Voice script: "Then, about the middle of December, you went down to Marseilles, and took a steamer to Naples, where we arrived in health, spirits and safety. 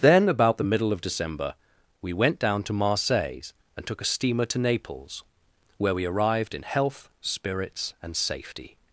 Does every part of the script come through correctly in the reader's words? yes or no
no